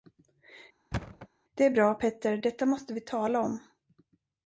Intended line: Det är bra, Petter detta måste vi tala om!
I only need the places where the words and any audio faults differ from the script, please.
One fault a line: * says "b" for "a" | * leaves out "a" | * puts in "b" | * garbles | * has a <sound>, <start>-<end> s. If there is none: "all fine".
* has a thud, 0.9-1.3 s